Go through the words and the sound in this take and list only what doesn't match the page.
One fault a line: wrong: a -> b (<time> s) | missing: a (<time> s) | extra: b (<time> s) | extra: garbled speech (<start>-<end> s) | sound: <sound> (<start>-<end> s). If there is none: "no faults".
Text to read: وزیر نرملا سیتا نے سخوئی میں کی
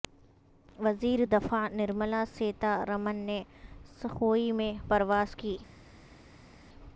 extra: دفاع (1.3 s)
extra: رمن (2.9 s)
extra: پرواز (4.9 s)